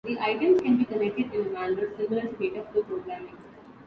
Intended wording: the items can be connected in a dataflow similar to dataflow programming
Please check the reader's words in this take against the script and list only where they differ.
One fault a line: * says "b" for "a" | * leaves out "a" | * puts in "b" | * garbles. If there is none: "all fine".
* says "manner" for "dataflow"